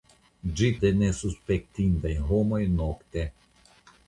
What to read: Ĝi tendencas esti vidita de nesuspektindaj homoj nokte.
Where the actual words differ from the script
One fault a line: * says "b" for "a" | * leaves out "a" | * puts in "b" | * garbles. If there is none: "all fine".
* leaves out "tendencas esti vidita"